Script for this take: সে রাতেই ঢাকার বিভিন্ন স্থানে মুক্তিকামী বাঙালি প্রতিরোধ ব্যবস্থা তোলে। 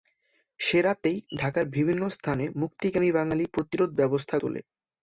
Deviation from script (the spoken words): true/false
false